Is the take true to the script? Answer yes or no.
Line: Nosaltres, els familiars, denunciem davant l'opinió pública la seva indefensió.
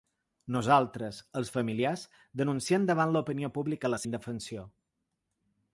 no